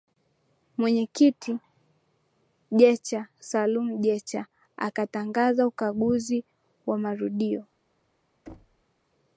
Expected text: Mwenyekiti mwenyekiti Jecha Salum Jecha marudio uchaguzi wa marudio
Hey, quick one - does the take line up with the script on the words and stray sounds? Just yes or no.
no